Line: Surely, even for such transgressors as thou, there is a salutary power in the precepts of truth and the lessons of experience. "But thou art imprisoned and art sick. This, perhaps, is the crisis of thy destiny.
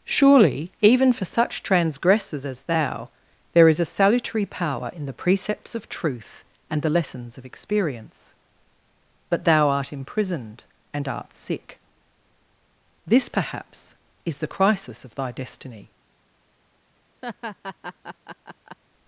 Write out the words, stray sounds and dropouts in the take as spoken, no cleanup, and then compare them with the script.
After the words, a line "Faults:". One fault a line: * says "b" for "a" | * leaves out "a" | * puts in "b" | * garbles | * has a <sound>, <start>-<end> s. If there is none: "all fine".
Surely, even for such transgressors as thou, there is a salutary power in the precepts of truth and the lessons of experience. "But thou art imprisoned and art sick. This, perhaps, is the crisis of thy destiny.
Faults:
* has a laugh, 17.2-18.8 s